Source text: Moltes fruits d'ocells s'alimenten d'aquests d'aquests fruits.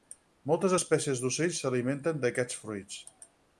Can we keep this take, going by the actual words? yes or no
no